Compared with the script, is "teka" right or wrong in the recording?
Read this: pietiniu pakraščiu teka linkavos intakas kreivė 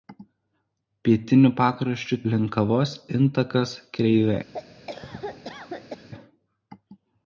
wrong